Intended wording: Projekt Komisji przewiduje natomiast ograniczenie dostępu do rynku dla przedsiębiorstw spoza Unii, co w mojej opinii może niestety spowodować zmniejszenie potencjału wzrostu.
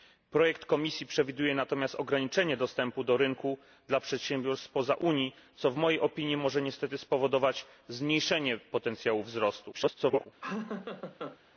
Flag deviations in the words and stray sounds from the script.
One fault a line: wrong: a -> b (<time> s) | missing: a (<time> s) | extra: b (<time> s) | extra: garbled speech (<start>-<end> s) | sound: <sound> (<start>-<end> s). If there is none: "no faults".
extra: garbled speech (9.7-10.3 s)
sound: laugh (10.4-11.4 s)